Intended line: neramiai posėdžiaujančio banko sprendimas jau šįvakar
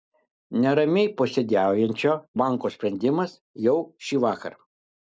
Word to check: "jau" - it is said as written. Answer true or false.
true